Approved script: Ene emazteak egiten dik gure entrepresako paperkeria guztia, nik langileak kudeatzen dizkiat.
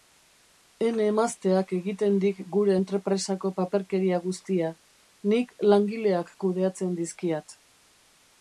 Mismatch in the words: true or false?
false